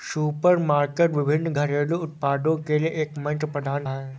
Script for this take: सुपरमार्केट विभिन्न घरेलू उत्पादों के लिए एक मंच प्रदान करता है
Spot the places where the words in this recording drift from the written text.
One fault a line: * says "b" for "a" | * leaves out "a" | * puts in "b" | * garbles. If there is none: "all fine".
* leaves out "करता"